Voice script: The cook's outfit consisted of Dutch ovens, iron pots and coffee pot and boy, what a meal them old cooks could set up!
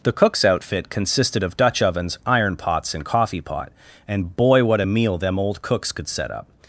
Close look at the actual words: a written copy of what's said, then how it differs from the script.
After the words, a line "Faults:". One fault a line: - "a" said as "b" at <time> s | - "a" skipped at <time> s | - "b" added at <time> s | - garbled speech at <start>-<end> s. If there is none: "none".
The cook's outfit consisted of Dutch ovens, iron pots and coffee pot and boy, what a meal them old cooks could set up!
Faults:
none